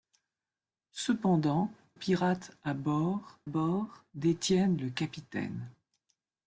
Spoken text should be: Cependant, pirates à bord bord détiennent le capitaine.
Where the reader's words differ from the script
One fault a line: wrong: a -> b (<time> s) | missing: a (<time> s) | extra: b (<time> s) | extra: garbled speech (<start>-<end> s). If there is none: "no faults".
no faults